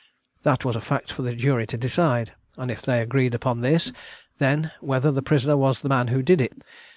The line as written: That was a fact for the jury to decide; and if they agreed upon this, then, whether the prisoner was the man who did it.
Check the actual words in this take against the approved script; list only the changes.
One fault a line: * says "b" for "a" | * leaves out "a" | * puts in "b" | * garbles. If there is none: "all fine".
all fine